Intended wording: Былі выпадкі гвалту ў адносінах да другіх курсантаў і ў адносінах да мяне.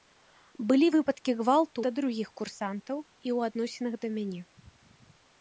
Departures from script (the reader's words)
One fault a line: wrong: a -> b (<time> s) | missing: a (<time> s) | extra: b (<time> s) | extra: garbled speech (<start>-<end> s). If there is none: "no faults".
missing: ў адносінах (1.8 s)